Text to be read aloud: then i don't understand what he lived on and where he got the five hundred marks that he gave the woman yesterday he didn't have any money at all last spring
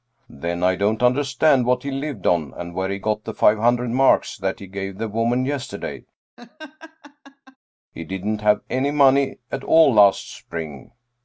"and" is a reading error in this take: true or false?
false